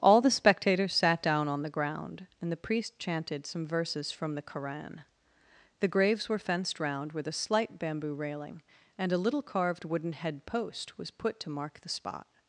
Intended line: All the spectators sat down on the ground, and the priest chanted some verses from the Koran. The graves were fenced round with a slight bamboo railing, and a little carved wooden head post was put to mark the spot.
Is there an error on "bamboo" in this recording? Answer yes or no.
no